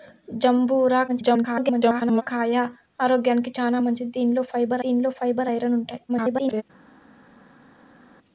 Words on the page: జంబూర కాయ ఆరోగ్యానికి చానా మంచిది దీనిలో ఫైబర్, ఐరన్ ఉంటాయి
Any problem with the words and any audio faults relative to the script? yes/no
yes